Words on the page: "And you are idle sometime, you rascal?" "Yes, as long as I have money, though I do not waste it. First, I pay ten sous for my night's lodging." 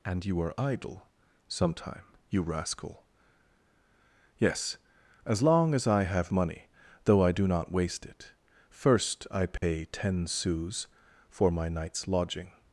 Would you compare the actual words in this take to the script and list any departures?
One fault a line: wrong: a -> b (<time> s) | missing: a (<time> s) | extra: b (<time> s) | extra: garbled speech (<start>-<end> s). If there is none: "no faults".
no faults